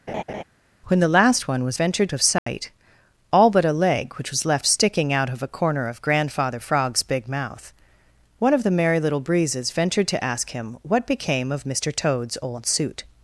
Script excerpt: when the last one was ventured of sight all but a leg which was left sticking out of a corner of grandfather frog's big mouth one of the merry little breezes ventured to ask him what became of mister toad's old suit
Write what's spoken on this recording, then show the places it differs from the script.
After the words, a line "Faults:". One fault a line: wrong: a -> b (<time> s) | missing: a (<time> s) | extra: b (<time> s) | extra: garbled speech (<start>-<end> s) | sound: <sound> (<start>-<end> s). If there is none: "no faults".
when the last one was ventured of sight all but a leg which was left sticking out of a corner of grandfather frog's big mouth one of the merry little breezes ventured to ask him what became of mister toad's old suit
Faults:
sound: laugh (0.1-0.4 s)
sound: dropout (2.4-2.5 s)